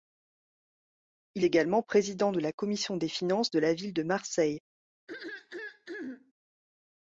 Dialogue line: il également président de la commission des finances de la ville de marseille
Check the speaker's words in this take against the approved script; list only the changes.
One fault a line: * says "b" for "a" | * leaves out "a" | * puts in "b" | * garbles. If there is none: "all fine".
all fine